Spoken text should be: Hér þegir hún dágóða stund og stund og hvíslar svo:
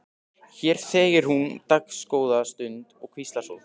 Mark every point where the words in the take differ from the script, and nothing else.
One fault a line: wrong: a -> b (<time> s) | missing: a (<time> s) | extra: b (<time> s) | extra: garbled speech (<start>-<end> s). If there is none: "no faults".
missing: stund og (3.1 s)